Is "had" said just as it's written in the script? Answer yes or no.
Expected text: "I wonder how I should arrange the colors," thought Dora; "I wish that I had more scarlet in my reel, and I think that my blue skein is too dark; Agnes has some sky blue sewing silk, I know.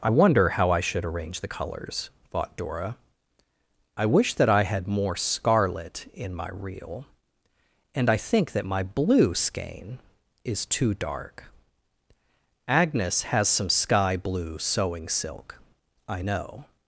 yes